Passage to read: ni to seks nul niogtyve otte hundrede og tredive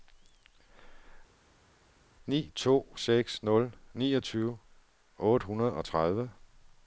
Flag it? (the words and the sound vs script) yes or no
no